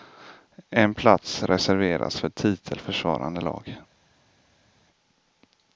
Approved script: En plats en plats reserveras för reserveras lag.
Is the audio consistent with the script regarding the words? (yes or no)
no